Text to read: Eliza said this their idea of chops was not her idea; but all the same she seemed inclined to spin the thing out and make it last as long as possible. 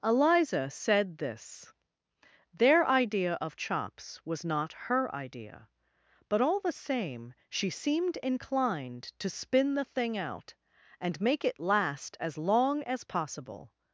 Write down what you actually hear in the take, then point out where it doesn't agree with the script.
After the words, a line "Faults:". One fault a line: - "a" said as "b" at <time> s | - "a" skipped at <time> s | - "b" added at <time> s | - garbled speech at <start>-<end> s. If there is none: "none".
Eliza said this their idea of chops was not her idea; but all the same she seemed inclined to spin the thing out and make it last as long as possible.
Faults:
none